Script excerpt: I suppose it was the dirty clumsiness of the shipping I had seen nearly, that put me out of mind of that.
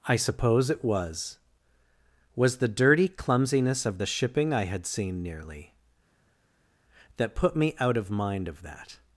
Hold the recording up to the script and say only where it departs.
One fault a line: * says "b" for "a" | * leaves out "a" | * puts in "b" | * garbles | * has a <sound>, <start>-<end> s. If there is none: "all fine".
* puts in "was"